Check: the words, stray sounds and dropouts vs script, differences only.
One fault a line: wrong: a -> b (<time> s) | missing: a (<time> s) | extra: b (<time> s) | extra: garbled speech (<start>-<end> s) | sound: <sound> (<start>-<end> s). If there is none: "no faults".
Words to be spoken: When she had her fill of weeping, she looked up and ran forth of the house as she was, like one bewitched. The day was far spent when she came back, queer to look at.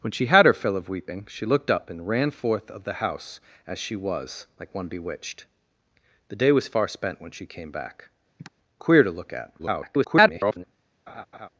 sound: sigh (8.4-8.5 s)
extra: garbled speech (9.6-10.6 s)
sound: laugh (11.1-11.5 s)